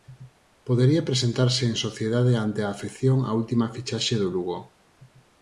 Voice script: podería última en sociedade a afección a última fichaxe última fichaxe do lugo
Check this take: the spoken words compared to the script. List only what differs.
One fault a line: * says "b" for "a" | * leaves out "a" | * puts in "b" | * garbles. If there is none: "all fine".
* says "presentarse" for "última"
* puts in "ante"
* leaves out "última fichaxe"